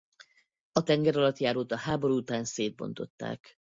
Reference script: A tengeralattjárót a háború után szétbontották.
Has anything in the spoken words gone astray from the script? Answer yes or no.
no